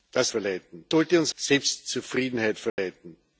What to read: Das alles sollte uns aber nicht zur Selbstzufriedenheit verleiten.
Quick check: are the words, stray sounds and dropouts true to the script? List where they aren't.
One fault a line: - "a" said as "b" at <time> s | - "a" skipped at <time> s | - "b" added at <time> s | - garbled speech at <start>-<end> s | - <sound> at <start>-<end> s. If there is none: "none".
- "alles" said as "verleiten" at 0.3 s
- "aber nicht zur" skipped at 1.3 s
- dropout at 2.7-2.8 s